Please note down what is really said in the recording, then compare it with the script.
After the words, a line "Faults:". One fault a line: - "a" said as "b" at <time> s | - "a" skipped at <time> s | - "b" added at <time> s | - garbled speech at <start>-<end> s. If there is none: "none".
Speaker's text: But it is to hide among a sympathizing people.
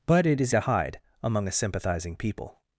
But it is to hide among a sympathizing people.
Faults:
none